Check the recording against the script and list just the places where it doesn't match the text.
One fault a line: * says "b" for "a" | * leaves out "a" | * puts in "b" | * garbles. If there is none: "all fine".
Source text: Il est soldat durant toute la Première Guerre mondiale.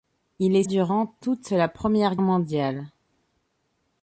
* leaves out "soldat"
* leaves out "Guerre"